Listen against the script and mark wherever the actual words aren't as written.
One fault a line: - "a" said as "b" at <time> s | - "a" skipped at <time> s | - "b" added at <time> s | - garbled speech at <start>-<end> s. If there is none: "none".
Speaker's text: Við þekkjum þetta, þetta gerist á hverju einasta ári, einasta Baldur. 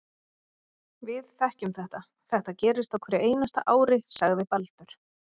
- "einasta" said as "sagði" at 4.2 s